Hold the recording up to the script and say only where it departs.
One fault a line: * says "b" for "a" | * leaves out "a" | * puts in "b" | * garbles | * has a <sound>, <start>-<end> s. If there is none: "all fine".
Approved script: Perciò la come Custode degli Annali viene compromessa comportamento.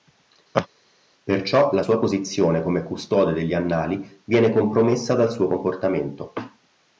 * has a laugh, 0.5-0.7 s
* puts in "sua posizione"
* puts in "dal suo"